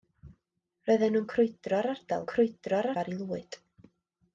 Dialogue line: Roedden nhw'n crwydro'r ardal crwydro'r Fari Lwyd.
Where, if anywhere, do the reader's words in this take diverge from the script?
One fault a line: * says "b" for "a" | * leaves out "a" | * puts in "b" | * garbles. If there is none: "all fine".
all fine